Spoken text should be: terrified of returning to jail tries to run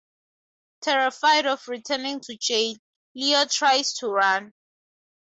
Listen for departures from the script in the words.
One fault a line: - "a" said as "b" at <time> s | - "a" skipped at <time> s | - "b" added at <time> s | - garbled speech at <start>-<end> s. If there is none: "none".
- "leo" added at 3.1 s